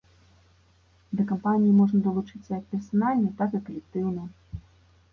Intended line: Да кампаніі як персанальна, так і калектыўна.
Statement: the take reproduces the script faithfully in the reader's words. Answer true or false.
false